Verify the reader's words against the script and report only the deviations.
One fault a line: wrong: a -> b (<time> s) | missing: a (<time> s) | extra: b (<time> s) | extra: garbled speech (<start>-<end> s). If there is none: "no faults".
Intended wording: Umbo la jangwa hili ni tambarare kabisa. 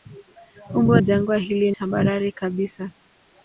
missing: la (1.0 s)
missing: ni (1.7 s)